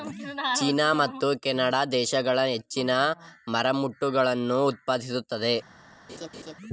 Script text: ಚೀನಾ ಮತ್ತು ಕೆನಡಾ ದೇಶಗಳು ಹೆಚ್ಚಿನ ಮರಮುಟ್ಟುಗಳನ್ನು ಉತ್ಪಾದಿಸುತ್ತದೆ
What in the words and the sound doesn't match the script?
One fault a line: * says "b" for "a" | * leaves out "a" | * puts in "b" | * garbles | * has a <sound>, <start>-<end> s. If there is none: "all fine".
* has a laugh, 6.1-6.5 s